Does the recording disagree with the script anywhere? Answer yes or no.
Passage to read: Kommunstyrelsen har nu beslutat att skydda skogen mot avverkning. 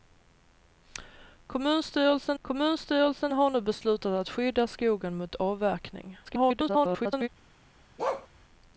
yes